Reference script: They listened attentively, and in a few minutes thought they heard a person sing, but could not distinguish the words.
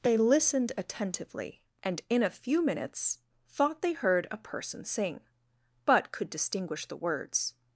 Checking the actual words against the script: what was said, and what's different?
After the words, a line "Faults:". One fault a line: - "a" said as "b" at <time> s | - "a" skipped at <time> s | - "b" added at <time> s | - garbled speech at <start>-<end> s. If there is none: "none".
They listened attentively, and in a few minutes thought they heard a person sing, but could distinguish the words.
Faults:
- "not" skipped at 6.3 s